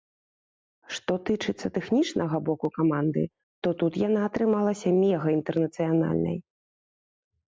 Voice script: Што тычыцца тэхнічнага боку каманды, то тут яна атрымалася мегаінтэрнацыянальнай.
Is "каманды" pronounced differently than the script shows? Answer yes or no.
no